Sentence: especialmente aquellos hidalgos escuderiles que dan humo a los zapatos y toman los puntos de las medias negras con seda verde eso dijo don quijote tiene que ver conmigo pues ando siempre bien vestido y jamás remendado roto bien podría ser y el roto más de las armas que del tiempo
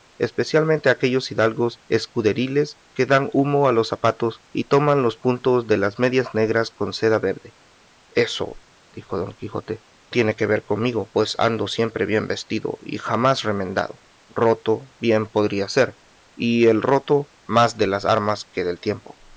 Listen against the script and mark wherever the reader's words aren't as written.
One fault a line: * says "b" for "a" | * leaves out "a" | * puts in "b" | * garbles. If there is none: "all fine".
all fine